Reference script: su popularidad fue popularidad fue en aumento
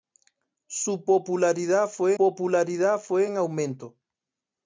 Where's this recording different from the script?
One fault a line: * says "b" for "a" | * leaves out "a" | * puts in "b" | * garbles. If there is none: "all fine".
all fine